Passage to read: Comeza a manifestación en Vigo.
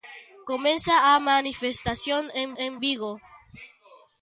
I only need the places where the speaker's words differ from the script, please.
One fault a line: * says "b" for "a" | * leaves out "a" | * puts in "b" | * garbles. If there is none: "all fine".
* puts in "en"